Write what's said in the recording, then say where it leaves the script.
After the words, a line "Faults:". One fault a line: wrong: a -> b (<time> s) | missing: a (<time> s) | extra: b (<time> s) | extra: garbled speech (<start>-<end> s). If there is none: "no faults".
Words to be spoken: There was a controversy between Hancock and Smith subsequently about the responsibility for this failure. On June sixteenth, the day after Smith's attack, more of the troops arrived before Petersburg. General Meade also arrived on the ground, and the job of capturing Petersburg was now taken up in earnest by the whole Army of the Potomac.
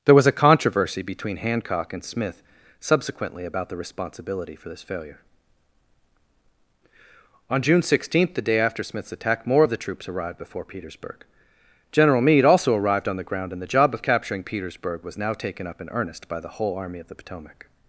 There was a controversy between Hancock and Smith subsequently about the responsibility for this failure. On June sixteenth, the day after Smith's attack, more of the troops arrived before Petersburg. General Meade also arrived on the ground, and the job of capturing Petersburg was now taken up in earnest by the whole Army of the Potomac.
Faults:
no faults